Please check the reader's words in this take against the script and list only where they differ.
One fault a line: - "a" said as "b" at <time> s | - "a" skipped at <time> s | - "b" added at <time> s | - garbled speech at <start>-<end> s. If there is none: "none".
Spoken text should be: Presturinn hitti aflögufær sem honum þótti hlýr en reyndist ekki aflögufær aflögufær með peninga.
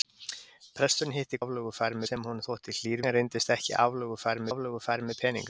none